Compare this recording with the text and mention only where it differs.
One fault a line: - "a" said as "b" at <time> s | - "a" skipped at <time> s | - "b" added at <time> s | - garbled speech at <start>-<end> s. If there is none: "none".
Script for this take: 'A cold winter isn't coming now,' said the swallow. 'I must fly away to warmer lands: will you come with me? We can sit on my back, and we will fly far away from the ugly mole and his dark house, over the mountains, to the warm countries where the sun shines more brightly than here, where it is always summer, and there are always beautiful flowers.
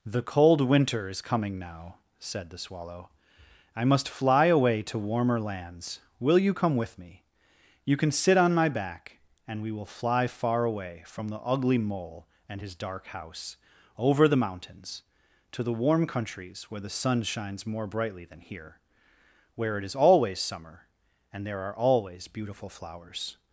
- "A" said as "The" at 0.0 s
- "isn't" said as "is" at 1.1 s
- "We" said as "You" at 7.8 s